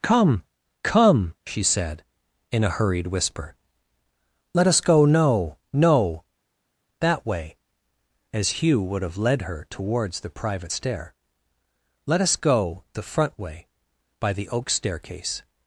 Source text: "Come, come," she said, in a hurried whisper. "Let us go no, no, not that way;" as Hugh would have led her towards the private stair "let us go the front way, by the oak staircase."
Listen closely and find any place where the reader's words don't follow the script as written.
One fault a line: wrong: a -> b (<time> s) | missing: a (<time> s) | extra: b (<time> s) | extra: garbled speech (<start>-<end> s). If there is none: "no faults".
missing: not (6.2 s)